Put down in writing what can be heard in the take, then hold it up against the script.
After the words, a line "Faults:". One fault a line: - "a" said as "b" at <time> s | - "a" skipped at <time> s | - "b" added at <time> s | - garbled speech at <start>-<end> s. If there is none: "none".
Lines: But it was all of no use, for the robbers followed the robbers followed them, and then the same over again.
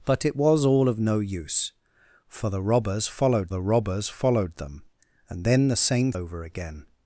But it was all of no use, for the robbers followed the robbers followed them, and then the same over again.
Faults:
none